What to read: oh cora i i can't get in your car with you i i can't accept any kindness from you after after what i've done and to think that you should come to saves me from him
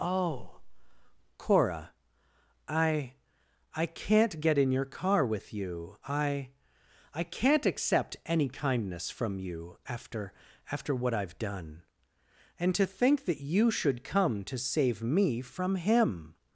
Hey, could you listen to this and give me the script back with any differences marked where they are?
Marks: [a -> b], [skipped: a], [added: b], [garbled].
oh cora i i can't get in your car with you i i can't accept any kindness from you after after what i've done and to think that you should come to [saves -> save] me from him